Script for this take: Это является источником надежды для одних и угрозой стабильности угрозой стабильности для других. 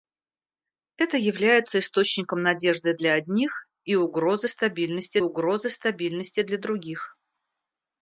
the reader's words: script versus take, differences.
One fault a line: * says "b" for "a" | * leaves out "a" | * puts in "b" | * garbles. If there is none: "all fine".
all fine